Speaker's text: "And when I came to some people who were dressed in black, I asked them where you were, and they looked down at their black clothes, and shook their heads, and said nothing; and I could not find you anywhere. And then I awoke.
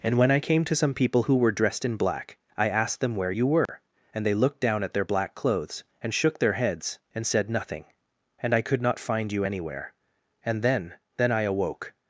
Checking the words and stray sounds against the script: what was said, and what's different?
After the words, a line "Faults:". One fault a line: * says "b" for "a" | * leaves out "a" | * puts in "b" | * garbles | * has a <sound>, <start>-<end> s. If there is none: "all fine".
"And when I came to some people who were dressed in black, I asked them where you were, and they looked down at their black clothes, and shook their heads, and said nothing; and I could not find you anywhere. And then then I awoke.
Faults:
* has a dropout, 3.7-3.7 s
* puts in "then"